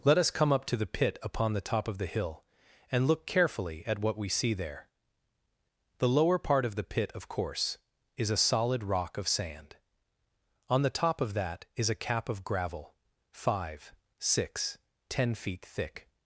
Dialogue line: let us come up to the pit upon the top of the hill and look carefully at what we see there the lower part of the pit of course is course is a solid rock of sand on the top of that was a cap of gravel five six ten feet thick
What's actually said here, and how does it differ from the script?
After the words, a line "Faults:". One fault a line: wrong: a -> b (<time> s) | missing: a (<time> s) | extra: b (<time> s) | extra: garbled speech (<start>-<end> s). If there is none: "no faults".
let us come up to the pit upon the top of the hill and look carefully at what we see there the lower part of the pit of course is a solid rock of sand on the top of that is a cap of gravel five six ten feet thick
Faults:
missing: course is (8.3 s)
wrong: was -> is (11.8 s)